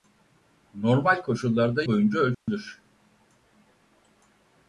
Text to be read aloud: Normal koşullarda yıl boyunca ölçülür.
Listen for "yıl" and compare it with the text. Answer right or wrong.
wrong